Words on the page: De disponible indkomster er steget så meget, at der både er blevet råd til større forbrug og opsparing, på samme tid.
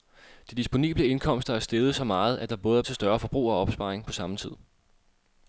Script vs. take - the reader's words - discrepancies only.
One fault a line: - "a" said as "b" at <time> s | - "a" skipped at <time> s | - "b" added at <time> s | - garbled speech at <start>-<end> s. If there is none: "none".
- "blevet råd" skipped at 2.8 s